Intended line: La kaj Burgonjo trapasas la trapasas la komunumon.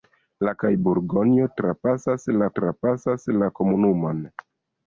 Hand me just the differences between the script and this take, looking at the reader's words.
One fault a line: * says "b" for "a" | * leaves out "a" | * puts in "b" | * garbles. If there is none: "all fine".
all fine